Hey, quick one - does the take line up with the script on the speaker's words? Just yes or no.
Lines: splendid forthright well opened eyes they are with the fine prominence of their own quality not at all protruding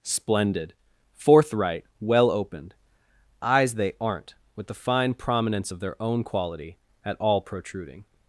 no